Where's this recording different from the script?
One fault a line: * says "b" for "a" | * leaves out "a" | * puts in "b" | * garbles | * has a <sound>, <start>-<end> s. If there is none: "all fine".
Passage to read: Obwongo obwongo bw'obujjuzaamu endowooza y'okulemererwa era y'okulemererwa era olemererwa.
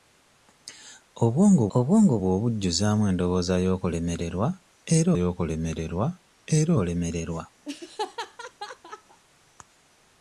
* has a laugh, 7.6-9.2 s